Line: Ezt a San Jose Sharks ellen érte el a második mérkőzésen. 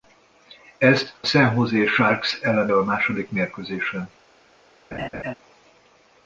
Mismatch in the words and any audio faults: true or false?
true